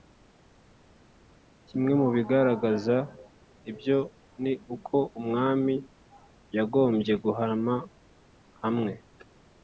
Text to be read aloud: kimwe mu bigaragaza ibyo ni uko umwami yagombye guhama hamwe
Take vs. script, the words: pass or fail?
pass